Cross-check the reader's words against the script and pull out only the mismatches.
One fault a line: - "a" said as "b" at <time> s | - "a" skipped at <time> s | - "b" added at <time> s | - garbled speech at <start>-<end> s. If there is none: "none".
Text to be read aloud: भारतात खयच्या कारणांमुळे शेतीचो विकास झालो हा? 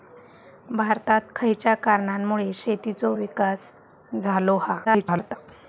- garbled speech at 4.8-5.4 s